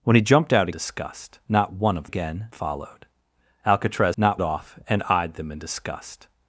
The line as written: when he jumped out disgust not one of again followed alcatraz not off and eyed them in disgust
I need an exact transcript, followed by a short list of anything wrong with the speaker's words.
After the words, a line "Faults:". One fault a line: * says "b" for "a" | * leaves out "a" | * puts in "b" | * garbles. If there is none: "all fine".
when he jumped out disgust not one of again followed alcatraz not off and eyed them in disgust
Faults:
all fine